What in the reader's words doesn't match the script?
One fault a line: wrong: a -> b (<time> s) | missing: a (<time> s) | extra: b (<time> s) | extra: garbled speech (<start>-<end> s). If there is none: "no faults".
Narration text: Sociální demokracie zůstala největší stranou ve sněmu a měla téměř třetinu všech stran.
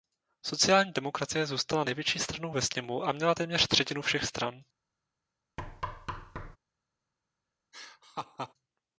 no faults